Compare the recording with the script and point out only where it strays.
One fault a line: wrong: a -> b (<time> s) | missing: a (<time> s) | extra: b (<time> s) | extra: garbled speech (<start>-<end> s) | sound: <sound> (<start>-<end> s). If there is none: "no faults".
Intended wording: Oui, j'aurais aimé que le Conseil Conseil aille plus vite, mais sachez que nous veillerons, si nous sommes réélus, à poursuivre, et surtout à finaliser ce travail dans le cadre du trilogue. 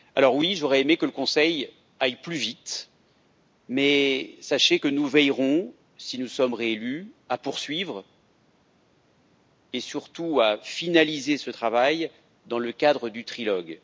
missing: Conseil (1.7 s)